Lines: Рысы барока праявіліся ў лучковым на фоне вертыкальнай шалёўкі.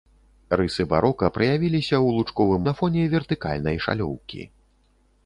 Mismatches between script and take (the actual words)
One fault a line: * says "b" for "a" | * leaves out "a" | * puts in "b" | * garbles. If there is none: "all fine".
all fine